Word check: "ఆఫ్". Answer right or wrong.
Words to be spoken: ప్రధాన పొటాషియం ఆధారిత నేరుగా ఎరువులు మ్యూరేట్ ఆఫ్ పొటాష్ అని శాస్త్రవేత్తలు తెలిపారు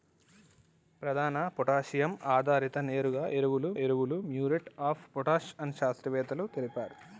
right